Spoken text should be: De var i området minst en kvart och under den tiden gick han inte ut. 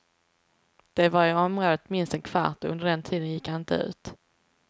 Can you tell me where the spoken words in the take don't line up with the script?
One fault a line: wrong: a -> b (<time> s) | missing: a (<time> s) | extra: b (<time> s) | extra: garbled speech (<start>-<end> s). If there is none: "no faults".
no faults